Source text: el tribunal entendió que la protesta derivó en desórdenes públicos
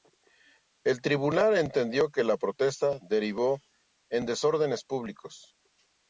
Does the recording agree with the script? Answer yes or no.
yes